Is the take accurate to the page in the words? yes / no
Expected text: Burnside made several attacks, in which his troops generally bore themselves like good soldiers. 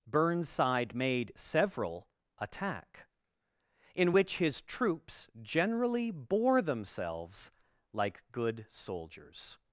no